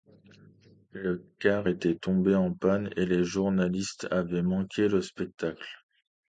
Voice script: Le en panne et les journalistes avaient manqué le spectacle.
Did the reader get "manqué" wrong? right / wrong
right